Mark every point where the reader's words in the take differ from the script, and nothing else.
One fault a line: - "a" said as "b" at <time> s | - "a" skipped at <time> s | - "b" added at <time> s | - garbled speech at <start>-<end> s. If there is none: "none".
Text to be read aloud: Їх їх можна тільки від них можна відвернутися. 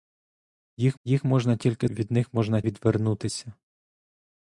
none